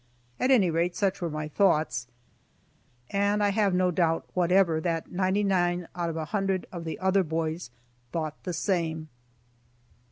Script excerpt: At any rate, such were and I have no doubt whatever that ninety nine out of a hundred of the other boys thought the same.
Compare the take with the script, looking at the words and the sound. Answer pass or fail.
fail